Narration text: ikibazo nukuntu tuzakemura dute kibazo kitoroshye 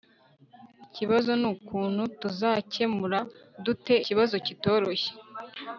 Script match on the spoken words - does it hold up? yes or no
yes